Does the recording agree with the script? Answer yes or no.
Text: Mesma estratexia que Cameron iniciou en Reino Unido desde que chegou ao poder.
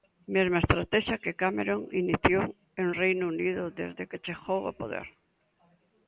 yes